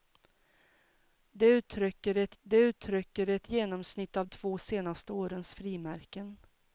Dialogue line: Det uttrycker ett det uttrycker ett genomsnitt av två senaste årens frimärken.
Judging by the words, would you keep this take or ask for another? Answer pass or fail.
pass